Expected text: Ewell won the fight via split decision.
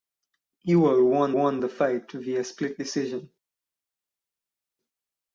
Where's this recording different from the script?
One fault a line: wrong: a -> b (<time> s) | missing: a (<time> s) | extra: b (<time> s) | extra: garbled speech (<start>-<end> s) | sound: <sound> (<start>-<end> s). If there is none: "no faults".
extra: won (1.3 s)